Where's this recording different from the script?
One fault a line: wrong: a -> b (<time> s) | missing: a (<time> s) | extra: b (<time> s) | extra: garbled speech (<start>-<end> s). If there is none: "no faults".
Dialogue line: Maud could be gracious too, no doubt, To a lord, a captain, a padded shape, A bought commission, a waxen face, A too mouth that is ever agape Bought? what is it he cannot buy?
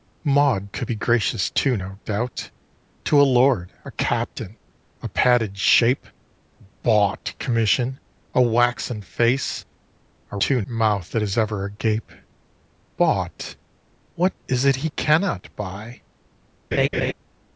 no faults